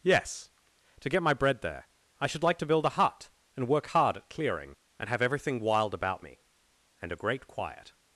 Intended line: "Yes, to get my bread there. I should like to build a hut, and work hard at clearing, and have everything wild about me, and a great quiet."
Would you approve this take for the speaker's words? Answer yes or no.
yes